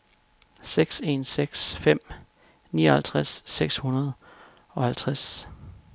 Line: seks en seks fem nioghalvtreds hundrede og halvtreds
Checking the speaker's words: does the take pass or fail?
fail